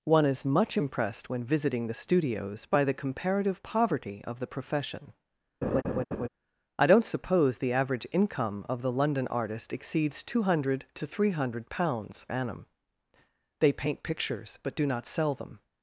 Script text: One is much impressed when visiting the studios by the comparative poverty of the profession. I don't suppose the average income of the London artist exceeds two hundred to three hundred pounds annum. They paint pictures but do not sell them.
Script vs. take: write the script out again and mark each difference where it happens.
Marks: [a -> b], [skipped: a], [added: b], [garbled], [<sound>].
One is much impressed when visiting the studios by the comparative poverty of the profession. [laugh] I don't suppose the average income of the London artist exceeds two hundred to three hundred pounds annum. They paint pictures but do not sell them.